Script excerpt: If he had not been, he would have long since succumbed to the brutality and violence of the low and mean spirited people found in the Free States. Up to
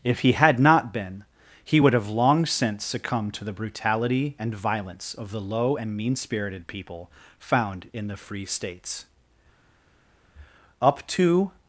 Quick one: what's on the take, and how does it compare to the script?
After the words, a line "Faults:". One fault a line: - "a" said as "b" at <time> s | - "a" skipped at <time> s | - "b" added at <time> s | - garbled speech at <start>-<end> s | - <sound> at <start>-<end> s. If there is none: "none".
If he had not been, he would have long since succumbed to the brutality and violence of the low and mean spirited people found in the Free States. Up to
Faults:
none